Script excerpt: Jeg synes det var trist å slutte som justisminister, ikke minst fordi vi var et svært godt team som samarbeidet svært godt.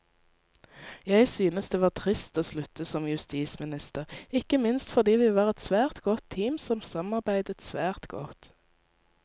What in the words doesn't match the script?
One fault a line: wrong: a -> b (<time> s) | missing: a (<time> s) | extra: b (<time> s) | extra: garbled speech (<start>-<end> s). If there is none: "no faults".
no faults